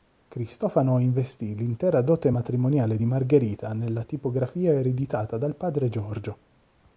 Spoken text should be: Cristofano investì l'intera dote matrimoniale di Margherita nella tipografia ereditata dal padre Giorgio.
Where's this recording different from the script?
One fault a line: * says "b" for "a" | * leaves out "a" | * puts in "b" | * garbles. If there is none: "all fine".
all fine